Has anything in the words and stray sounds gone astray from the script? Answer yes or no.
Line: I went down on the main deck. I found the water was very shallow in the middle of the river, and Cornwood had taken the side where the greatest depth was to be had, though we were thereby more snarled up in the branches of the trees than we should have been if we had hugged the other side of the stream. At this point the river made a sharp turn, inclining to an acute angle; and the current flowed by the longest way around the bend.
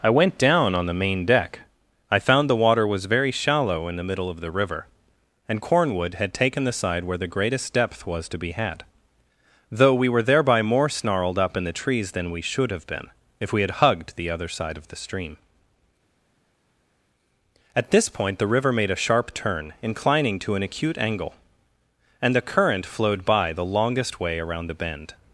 yes